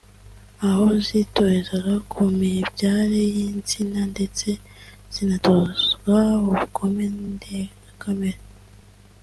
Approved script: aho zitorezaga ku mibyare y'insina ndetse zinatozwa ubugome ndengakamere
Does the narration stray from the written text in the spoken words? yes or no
no